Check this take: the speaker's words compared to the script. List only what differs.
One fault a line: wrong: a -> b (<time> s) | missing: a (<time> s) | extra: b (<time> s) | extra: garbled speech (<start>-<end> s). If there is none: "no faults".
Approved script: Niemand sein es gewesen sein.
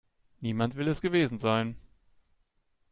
wrong: sein -> will (0.8 s)